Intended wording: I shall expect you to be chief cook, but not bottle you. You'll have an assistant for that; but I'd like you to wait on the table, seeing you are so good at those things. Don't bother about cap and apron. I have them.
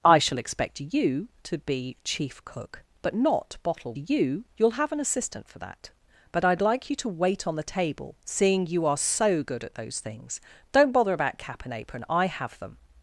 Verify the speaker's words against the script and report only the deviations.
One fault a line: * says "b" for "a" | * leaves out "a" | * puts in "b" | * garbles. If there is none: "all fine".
all fine